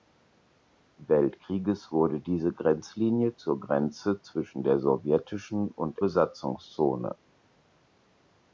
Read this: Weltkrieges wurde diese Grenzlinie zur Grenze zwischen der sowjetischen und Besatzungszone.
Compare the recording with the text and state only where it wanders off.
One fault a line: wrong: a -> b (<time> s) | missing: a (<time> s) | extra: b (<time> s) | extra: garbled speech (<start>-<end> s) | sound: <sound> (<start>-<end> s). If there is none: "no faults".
no faults